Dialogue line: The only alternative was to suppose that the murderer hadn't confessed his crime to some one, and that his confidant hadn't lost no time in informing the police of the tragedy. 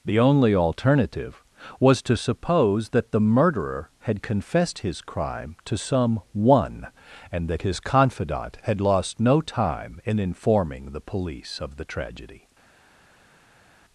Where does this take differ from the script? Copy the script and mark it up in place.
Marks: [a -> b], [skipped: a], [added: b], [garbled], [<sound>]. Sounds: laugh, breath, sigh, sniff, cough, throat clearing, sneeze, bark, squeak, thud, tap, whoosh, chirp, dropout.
The only alternative was to suppose that the murderer [hadn't -> had] confessed his crime to some one, and that his confidant [hadn't -> had] lost no time in informing the police of the tragedy.